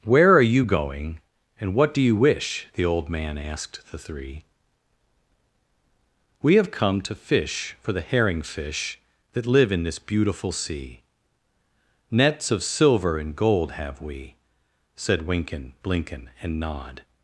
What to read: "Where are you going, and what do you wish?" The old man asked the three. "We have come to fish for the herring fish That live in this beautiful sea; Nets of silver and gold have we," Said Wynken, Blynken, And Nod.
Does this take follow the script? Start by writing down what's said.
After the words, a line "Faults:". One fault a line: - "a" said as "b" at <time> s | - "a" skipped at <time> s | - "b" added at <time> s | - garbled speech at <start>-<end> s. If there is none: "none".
"Where are you going, and what do you wish?" The old man asked the three. "We have come to fish for the herring fish That live in this beautiful sea; Nets of silver and gold have we," Said Wynken, Blynken, And Nod.
Faults:
none